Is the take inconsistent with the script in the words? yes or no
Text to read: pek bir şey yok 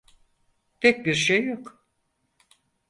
no